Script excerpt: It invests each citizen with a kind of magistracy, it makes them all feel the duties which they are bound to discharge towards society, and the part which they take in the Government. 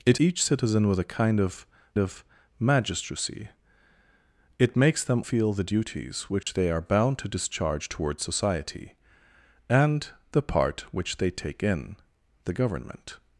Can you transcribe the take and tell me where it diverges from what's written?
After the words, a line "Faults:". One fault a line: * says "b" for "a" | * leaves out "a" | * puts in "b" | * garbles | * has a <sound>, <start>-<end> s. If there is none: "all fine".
It each citizen with a kind of of magistracy, it makes them feel the duties which they are bound to discharge towards society, and the part which they take in the Government.
Faults:
* leaves out "invests"
* puts in "of"
* leaves out "all"
* has a dropout, 6.4-6.5 s